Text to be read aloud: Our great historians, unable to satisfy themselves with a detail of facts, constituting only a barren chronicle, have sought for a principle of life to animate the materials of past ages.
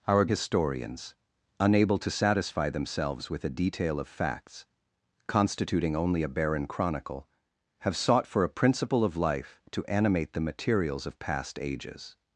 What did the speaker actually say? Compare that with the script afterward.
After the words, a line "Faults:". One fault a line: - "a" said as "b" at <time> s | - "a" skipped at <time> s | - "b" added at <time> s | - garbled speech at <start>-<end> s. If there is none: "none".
Our historians, unable to satisfy themselves with a detail of facts, constituting only a barren chronicle, have sought for a principle of life to animate the materials of past ages.
Faults:
- "great" skipped at 0.2 s